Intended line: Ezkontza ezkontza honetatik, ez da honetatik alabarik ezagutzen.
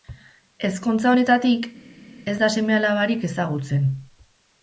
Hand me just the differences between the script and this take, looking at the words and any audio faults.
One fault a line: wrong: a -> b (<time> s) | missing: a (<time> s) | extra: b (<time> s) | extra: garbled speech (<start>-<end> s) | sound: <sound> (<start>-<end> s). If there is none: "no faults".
missing: ezkontza (1.1 s)
wrong: honetatik -> seme (2.6 s)